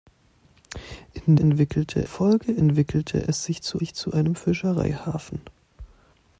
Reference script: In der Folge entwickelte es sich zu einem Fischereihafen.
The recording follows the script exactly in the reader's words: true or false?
false